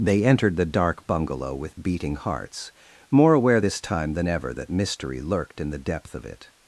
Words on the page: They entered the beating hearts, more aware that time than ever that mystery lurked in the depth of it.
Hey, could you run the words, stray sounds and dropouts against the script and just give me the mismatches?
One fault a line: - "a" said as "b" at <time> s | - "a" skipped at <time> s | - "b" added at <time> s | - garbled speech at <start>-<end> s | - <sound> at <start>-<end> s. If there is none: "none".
- "dark bungalow with" added at 0.7 s
- "that" said as "this" at 3.6 s